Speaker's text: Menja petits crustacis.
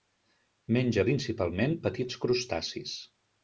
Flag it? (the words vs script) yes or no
yes